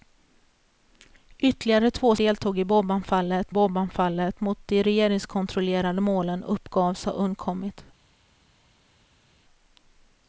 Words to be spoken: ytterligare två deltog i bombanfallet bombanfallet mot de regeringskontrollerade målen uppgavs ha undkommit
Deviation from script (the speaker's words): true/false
false